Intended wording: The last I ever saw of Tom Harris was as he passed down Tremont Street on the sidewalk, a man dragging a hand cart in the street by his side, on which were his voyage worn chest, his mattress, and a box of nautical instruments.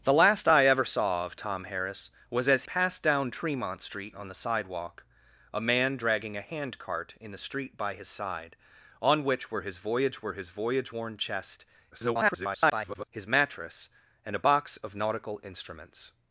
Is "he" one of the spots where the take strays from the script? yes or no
yes